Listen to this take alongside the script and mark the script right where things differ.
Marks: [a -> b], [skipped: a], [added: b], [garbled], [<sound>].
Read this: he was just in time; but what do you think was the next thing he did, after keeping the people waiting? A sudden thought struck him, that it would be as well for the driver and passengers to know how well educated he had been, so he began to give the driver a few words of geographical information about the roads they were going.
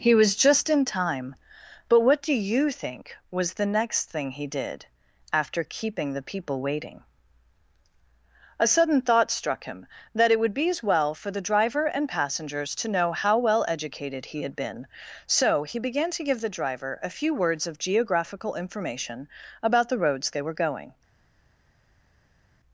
he was just in time; but what do you think was the next thing he did, after keeping the people waiting? A sudden thought struck him, that it would be as well for the driver and passengers to know how well educated he had been, so he began to give the driver a few words of geographical information about the roads they were going.